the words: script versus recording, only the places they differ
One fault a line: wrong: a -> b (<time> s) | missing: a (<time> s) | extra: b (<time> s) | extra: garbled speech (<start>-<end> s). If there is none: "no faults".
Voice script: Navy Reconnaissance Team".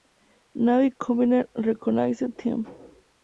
extra: Combined (1.0 s)